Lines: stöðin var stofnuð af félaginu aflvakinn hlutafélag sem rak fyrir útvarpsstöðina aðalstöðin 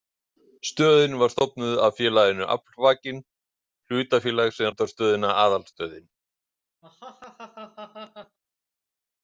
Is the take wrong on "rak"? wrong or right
wrong